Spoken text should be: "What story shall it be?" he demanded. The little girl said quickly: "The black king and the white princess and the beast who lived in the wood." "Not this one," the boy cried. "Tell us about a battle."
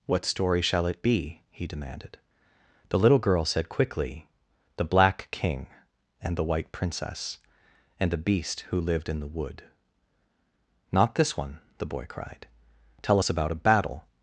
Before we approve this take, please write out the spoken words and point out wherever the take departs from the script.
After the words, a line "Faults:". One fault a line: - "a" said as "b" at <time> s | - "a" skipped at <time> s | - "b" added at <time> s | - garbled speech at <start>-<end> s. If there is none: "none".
"What story shall it be?" he demanded. The little girl said quickly: "The black king and the white princess and the beast who lived in the wood." "Not this one," the boy cried. "Tell us about a battle."
Faults:
none